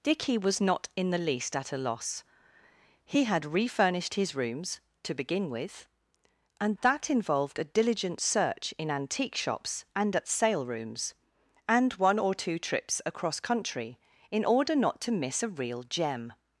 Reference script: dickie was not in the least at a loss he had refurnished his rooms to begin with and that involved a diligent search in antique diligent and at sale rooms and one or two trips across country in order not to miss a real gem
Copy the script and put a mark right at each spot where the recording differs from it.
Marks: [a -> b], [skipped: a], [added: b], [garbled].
dickie was not in the least at a loss he had refurnished his rooms to begin with and that involved a diligent search in antique [diligent -> shops] and at sale rooms and one or two trips across country in order not to miss a real gem